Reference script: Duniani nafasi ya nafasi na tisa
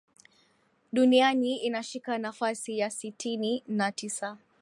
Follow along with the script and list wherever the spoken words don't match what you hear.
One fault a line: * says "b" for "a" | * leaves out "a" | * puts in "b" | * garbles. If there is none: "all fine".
* puts in "inashika"
* says "sitini" for "nafasi"